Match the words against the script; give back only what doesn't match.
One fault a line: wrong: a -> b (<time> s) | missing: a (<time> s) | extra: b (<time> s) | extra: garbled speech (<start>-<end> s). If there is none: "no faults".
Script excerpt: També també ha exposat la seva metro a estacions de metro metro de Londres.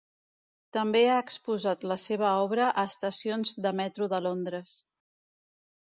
missing: també (1.0 s)
wrong: metro -> obra (2.5 s)
missing: metro (4.1 s)